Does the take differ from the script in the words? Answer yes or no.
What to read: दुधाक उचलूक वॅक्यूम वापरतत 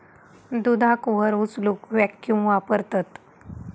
yes